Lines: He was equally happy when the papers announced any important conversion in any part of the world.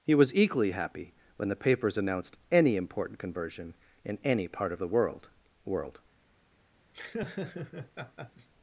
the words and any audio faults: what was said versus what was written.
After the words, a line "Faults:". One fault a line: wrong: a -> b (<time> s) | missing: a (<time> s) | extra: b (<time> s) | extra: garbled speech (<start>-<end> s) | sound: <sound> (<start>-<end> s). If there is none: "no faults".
He was equally happy when the papers announced any important conversion in any part of the world world.
Faults:
extra: world (5.6 s)
sound: laugh (6.9-8.5 s)